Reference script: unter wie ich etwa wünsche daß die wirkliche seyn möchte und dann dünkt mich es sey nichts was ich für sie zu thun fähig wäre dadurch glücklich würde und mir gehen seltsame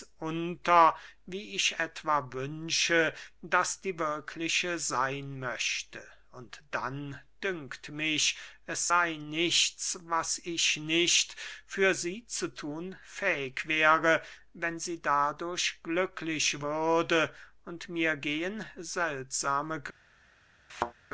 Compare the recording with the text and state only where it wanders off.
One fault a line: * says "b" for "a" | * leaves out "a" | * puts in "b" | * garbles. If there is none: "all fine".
* puts in "nicht"
* puts in "wenn sie"